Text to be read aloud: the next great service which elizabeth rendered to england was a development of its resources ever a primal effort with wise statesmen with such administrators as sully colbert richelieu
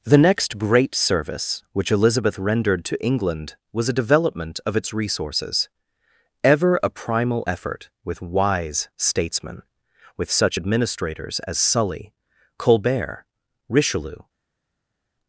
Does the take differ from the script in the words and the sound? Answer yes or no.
no